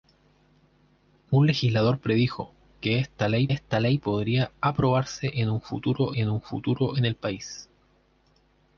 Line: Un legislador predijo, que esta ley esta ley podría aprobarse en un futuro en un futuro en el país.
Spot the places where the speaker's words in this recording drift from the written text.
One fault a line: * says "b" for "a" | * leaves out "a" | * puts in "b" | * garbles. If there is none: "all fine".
all fine